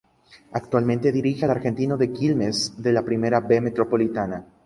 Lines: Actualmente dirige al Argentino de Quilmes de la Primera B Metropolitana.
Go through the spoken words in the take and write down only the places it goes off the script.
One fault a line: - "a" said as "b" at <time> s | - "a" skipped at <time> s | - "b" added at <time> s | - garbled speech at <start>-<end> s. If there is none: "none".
none